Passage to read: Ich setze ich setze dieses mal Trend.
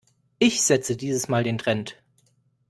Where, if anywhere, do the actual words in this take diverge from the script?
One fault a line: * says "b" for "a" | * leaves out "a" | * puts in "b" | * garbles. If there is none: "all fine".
* leaves out "ich setze"
* puts in "den"